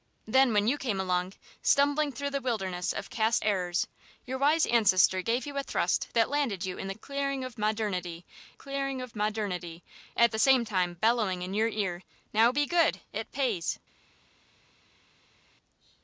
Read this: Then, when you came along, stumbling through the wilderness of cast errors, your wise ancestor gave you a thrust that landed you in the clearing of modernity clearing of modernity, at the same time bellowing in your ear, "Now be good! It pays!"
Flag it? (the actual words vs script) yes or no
no